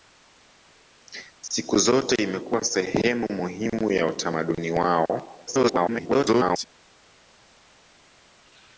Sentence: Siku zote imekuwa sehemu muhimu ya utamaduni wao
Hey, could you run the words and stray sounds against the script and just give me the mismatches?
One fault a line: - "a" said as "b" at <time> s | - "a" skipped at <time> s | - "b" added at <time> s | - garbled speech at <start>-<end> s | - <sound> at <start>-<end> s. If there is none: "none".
- garbled speech at 5.5-6.6 s